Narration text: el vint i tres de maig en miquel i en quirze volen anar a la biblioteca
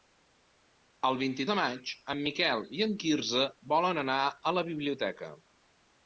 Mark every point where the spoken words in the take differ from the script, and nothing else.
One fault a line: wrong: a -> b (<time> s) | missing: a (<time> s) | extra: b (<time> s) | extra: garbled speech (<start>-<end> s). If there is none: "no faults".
missing: tres (1.4 s)